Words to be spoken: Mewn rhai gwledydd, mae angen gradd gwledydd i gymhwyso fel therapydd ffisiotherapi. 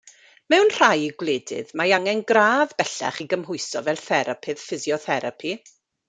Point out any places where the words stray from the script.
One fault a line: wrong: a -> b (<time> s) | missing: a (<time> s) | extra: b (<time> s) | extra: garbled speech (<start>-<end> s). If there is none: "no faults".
wrong: gwledydd -> bellach (2.8 s)